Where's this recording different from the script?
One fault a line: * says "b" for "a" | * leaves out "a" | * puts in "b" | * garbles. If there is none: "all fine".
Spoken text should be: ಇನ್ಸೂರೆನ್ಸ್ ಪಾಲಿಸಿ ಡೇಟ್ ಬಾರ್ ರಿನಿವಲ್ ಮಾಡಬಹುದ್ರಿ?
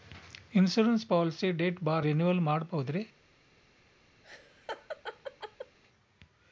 all fine